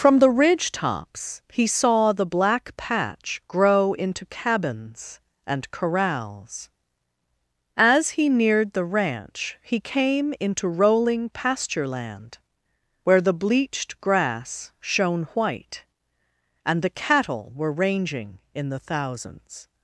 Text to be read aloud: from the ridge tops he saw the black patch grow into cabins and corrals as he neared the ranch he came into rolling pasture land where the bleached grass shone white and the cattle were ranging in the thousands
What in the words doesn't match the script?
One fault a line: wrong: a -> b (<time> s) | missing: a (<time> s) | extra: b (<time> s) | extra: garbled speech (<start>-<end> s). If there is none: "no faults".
no faults